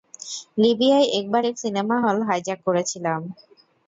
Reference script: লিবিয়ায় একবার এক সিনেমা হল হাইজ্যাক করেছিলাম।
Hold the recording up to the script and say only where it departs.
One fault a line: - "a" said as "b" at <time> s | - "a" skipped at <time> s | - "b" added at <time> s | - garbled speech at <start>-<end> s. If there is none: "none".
none